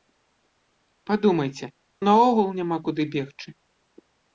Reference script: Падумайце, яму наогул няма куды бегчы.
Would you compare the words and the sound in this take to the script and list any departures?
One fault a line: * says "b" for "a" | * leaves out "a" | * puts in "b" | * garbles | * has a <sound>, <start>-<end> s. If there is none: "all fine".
* leaves out "яму"